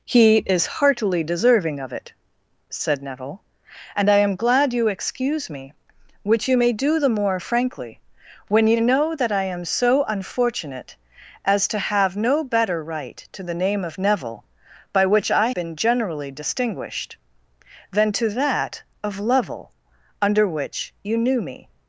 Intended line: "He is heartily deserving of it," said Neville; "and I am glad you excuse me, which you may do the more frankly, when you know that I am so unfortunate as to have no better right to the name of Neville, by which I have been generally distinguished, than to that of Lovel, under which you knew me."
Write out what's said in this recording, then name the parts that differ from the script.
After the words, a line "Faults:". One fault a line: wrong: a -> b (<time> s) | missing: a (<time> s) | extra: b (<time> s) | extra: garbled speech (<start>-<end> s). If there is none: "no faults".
"He is heartily deserving of it," said Neville; "and I am glad you excuse me, which you may do the more frankly, when you know that I am so unfortunate as to have no better right to the name of Neville, by which I been generally distinguished, than to that of Lovel, under which you knew me."
Faults:
missing: have (15.5 s)